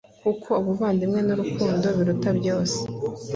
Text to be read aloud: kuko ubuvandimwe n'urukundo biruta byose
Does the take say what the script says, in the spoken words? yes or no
yes